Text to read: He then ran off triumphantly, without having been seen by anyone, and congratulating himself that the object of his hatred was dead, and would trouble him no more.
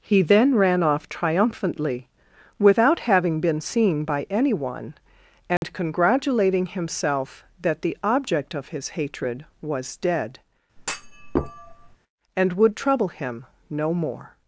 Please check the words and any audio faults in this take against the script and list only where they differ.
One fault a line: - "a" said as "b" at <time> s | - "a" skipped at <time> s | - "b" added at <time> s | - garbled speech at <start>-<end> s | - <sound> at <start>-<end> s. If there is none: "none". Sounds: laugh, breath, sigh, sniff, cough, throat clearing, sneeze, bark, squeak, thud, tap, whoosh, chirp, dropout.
- dropout at 5.6-5.6 s
- thud at 10.8-12.0 s